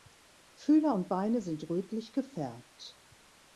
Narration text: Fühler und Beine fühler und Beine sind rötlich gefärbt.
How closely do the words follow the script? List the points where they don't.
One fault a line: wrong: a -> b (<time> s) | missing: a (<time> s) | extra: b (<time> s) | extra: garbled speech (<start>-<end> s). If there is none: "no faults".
missing: fühler und Beine (1.4 s)